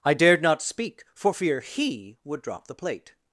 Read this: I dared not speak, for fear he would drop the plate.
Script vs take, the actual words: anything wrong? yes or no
no